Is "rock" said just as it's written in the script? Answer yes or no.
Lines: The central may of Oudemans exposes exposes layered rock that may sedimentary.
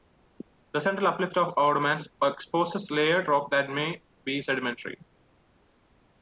yes